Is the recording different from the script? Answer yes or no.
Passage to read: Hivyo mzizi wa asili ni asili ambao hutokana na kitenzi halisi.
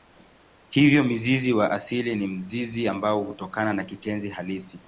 yes